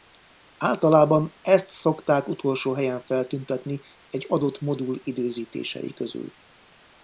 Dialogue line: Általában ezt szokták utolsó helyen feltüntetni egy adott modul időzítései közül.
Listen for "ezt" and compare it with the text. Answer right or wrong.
right